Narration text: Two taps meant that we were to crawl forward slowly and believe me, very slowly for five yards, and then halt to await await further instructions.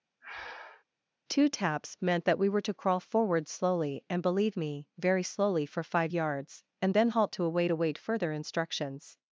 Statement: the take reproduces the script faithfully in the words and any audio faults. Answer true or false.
false